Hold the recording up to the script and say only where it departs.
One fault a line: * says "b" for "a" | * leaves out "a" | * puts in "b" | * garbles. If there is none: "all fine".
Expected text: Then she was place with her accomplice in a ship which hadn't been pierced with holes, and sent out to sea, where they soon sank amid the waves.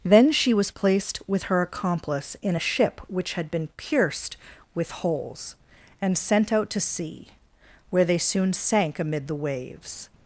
* says "placed" for "place"
* says "had" for "hadn't"